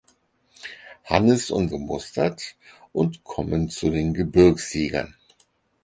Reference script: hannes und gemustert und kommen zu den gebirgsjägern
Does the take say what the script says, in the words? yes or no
yes